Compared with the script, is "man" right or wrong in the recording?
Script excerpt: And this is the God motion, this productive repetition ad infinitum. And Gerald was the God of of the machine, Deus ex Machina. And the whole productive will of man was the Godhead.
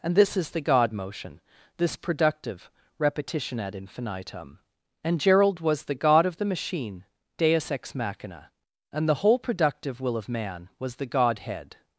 right